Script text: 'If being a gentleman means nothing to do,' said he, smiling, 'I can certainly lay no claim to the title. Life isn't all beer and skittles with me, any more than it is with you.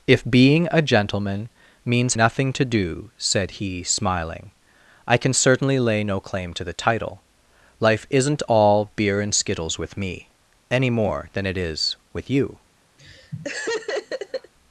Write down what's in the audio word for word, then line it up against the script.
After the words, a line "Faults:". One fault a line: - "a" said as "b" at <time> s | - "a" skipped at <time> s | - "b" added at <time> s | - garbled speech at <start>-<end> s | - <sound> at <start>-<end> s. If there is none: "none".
'If being a gentleman means nothing to do,' said he, smiling, 'I can certainly lay no claim to the title. Life isn't all beer and skittles with me, any more than it is with you.
Faults:
- laugh at 13.0-14.5 s